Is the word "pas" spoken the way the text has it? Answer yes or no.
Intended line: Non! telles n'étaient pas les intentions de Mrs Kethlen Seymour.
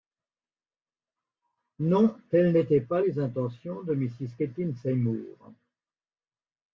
yes